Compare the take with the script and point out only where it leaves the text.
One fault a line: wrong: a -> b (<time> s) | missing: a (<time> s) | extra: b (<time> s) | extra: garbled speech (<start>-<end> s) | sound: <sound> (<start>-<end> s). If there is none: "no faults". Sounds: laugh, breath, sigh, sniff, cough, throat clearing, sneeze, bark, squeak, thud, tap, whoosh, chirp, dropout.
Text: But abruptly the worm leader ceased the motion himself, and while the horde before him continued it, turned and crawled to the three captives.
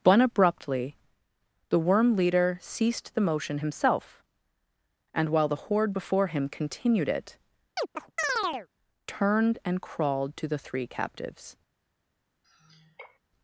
sound: chirp (7.8-8.7 s)
sound: sigh (12.4-13.2 s)